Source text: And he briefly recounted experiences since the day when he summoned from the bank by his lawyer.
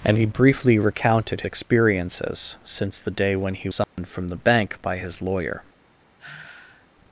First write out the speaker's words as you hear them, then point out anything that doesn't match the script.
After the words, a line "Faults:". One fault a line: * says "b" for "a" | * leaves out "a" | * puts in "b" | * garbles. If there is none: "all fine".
And he briefly recounted experiences since the day when he summoned from the bank by his lawyer.
Faults:
all fine